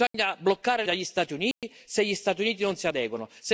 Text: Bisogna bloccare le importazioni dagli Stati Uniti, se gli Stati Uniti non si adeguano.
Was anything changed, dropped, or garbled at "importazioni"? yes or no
yes